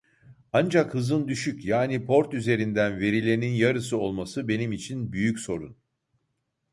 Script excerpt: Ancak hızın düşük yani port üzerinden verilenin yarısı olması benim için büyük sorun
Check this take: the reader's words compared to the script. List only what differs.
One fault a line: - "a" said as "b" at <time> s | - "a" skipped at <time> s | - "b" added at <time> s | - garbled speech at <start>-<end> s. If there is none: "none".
none